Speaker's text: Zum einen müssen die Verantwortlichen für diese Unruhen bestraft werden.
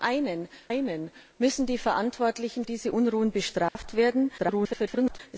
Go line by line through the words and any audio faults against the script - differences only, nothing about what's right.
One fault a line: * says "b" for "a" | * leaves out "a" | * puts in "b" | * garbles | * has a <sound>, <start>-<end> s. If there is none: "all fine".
* puts in "einen"
* leaves out "für"
* has a dropout, 3.7-3.8 s
* garbles